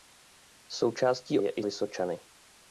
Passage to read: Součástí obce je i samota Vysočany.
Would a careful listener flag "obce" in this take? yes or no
yes